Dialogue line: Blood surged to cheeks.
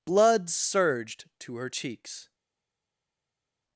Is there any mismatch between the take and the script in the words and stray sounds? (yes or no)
yes